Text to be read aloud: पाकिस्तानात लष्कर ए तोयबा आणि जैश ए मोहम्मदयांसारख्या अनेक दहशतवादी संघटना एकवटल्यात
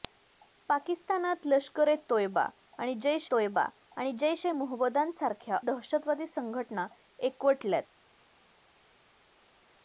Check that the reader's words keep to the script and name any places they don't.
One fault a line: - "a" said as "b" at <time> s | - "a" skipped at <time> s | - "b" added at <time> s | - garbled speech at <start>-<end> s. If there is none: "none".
- "तोयबा आणि जैश" added at 3.3 s
- "अनेक" skipped at 5.6 s